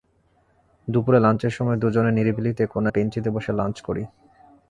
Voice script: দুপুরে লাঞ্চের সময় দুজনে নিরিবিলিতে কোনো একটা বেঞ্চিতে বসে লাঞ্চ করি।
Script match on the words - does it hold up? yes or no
no